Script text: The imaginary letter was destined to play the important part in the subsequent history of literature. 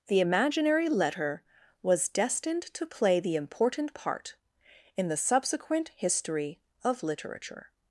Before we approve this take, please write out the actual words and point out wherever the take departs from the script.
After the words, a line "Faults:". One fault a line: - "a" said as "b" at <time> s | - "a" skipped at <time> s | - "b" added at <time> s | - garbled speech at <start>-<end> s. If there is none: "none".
The imaginary letter was destined to play the important part in the subsequent history of literature.
Faults:
none